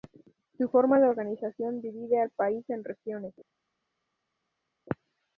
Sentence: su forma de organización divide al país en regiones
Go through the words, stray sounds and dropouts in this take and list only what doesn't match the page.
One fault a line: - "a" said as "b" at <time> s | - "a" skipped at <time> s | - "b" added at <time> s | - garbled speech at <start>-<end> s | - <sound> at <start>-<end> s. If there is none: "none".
none